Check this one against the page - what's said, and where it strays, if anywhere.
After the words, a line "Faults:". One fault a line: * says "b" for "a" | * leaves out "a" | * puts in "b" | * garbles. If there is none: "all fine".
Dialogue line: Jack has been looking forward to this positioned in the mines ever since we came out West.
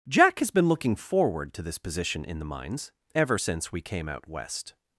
Jack has been looking forward to this position in the mines ever since we came out West.
Faults:
* says "position" for "positioned"